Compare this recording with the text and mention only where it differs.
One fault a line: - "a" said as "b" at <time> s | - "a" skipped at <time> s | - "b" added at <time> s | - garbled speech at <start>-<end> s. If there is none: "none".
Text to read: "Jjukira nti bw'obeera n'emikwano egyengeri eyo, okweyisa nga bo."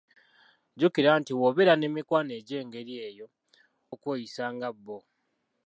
none